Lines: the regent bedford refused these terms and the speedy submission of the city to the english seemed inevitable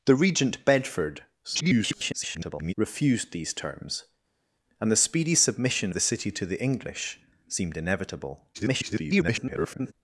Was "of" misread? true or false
true